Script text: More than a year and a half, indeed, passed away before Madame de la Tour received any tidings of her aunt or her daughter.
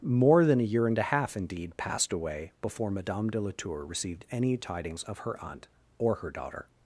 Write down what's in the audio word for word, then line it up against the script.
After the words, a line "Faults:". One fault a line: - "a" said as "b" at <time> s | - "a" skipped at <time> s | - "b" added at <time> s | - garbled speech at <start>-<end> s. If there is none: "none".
More than a year and a half, indeed, passed away before Madame de la Tour received any tidings of her aunt or her daughter.
Faults:
none